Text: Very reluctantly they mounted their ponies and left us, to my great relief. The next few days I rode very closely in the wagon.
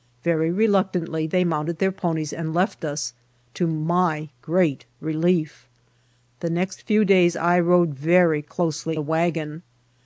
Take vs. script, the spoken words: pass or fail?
fail